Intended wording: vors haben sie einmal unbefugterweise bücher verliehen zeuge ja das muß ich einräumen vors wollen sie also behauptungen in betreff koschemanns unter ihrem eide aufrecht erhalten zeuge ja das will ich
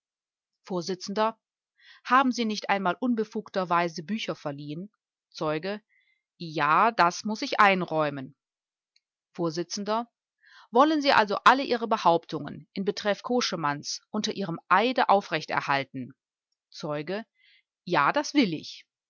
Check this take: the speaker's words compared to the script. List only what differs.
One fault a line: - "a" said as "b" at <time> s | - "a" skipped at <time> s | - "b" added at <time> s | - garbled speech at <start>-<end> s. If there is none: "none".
- "nicht" added at 2.5 s
- "alle ihre" added at 11.4 s